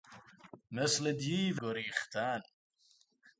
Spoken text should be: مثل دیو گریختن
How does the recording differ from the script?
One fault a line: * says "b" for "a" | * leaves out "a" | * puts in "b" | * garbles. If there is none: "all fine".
all fine